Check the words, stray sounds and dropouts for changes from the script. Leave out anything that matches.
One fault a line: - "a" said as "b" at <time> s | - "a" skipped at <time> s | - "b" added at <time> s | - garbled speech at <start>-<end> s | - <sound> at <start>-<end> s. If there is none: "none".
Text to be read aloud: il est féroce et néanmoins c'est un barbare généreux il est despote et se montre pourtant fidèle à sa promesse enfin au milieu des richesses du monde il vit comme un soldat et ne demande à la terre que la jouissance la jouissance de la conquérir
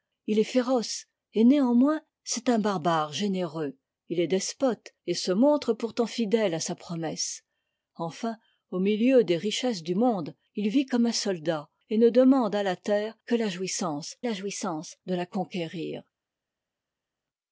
none